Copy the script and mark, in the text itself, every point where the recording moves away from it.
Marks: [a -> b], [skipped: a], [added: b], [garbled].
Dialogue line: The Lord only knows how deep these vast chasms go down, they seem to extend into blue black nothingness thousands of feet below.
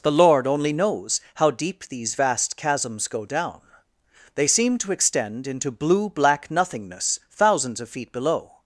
The Lord only knows how deep these vast chasms go down, they seem to extend into blue black nothingness thousands of feet below.